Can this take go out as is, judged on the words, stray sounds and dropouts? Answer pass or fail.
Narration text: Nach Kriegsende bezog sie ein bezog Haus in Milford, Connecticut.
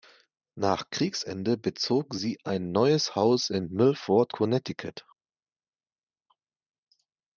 fail